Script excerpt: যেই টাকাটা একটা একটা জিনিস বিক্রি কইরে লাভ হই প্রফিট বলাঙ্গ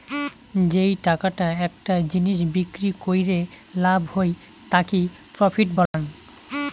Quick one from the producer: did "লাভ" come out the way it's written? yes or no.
yes